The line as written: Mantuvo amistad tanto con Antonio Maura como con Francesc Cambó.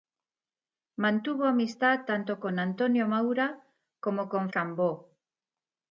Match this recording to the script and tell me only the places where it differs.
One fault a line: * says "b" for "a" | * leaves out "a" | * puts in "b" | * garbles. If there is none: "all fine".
* leaves out "Francesc"